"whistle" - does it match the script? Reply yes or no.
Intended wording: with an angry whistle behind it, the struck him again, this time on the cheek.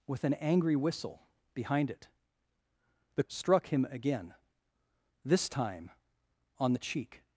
yes